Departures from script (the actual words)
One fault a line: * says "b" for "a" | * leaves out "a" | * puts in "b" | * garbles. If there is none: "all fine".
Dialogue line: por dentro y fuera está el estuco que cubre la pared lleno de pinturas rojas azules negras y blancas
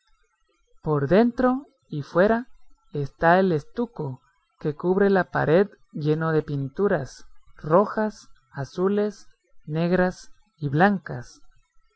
all fine